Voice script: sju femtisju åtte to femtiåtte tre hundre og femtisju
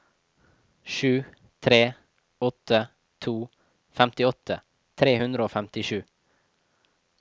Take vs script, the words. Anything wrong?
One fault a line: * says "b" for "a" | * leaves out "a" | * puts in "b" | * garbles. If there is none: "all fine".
* says "tre" for "femtisju"